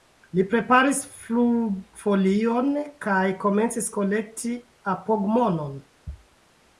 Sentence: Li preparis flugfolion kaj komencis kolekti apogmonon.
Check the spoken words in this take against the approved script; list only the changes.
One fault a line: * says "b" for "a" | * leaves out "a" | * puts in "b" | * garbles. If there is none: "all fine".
all fine